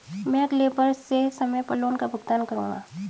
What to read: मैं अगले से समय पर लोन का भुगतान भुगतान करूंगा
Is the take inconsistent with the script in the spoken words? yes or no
yes